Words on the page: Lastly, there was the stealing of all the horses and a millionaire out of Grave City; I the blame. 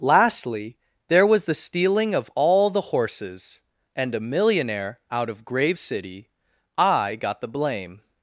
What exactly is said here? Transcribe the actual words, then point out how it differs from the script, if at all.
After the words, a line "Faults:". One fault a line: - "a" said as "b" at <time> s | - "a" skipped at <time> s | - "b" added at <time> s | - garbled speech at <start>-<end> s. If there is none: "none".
Lastly, there was the stealing of all the horses and a millionaire out of Grave City; I got the blame.
Faults:
- "got" added at 7.2 s